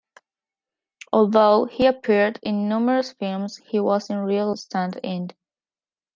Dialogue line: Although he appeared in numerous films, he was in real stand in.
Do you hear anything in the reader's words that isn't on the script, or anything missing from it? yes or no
no